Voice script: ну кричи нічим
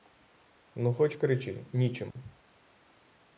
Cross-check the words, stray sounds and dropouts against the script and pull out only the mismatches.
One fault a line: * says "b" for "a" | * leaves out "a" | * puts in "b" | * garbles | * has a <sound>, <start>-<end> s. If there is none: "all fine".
* puts in "хоч"
* has a dropout, 2.1-2.2 s